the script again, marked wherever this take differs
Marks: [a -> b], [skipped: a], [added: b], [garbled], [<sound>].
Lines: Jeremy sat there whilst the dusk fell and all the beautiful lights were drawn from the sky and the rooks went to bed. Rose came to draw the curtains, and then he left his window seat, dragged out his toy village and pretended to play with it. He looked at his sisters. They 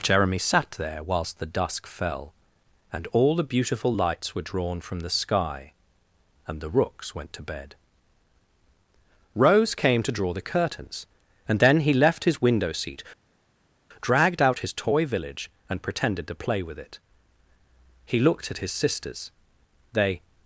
Jeremy sat there whilst the dusk fell and all the beautiful lights were drawn from the sky and the rooks went to bed. Rose came to draw the curtains, and then he left his window seat, dragged out his toy village and pretended to play with it. He looked at his sisters. They